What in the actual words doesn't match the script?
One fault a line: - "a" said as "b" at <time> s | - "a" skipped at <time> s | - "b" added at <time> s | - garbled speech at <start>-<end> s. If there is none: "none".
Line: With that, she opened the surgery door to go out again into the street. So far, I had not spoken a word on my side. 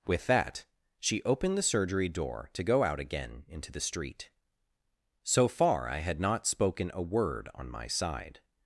none